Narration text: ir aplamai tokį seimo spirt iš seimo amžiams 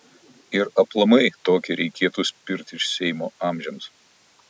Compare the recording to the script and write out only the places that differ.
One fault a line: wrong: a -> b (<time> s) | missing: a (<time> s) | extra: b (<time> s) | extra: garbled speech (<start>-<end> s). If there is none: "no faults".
wrong: seimo -> reikėtų (1.8 s)